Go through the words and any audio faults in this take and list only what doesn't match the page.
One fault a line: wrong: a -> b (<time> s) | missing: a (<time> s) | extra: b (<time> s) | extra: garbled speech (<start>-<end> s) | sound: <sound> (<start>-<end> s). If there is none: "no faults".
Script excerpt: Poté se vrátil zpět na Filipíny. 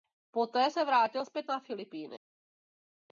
no faults